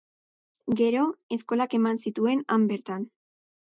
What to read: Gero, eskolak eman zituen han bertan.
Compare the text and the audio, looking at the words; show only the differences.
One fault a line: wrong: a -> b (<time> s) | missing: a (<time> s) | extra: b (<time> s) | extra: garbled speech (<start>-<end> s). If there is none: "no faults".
no faults